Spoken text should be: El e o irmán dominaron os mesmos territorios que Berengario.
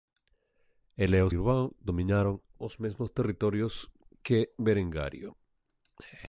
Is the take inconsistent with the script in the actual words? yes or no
no